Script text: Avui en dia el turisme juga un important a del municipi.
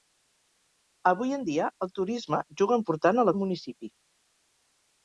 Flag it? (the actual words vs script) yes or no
no